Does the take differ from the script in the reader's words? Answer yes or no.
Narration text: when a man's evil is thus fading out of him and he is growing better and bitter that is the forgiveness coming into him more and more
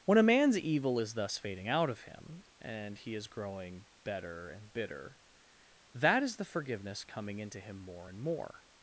no